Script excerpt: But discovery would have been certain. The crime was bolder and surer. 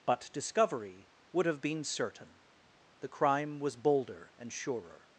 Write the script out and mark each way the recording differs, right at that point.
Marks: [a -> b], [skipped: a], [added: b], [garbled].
But discovery would have been certain. The crime was bolder and surer.